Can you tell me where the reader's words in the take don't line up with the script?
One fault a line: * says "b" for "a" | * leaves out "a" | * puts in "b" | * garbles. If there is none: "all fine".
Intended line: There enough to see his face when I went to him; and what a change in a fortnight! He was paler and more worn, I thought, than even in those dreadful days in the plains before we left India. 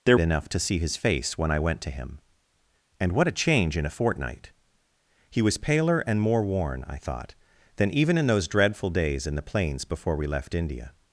all fine